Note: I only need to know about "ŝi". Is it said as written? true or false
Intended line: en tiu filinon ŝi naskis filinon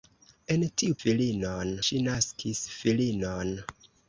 true